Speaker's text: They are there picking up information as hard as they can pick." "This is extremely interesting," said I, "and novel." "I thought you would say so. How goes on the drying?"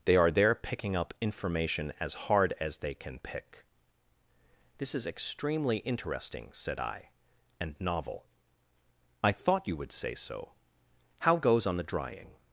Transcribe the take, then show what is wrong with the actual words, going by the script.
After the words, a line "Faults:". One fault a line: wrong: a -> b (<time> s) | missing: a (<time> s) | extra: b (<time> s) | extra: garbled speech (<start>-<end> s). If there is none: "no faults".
They are there picking up information as hard as they can pick." "This is extremely interesting," said I, "and novel." "I thought you would say so. How goes on the drying?"
Faults:
no faults